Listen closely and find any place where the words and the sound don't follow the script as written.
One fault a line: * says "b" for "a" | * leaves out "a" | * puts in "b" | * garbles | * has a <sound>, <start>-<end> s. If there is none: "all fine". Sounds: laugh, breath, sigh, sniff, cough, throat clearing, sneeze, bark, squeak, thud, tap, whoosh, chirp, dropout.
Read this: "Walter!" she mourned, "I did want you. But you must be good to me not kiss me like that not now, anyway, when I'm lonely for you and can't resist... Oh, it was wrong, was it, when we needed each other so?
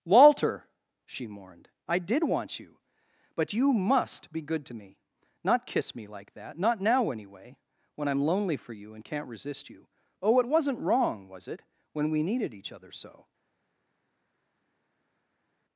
* puts in "you"
* says "wasn't" for "was"